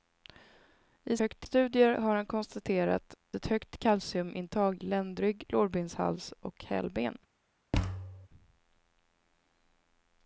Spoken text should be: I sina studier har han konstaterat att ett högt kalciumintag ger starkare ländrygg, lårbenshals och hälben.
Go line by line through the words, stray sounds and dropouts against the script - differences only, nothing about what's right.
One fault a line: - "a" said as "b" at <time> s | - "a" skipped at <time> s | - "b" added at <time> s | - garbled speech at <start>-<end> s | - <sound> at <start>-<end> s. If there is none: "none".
- "sina" said as "högt" at 1.2 s
- "att" skipped at 3.1 s
- "ger starkare" skipped at 4.8 s
- thud at 7.7-8.3 s